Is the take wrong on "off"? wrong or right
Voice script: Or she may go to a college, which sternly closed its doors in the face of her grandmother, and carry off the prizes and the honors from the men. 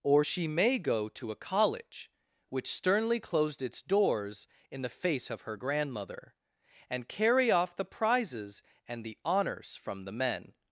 right